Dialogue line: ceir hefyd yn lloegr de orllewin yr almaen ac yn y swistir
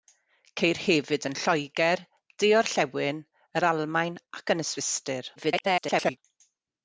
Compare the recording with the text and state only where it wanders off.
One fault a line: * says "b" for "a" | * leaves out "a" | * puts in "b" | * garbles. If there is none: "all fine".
* garbles